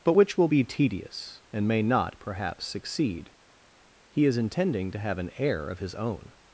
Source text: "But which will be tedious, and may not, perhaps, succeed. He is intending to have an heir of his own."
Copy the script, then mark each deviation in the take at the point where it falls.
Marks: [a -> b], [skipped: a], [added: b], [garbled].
"But which will be tedious, and may not, perhaps, succeed. He is intending to have an heir of his own."